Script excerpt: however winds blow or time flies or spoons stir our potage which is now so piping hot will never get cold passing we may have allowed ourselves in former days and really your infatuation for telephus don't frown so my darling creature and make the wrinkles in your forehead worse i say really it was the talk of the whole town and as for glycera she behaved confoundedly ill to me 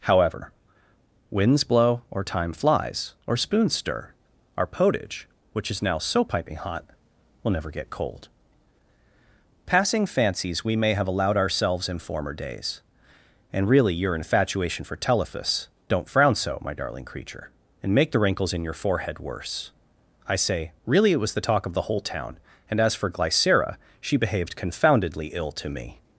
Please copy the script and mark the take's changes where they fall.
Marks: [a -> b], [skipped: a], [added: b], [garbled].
however winds blow or time flies or spoons stir our potage which is now so piping hot will never get cold passing [added: fancies] we may have allowed ourselves in former days and really your infatuation for telephus don't frown so my darling creature and make the wrinkles in your forehead worse i say really it was the talk of the whole town and as for glycera she behaved confoundedly ill to me